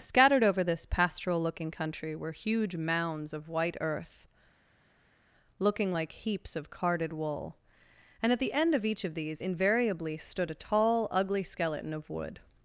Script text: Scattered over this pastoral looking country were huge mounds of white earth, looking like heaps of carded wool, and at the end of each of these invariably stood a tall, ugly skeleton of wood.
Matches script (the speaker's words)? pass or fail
pass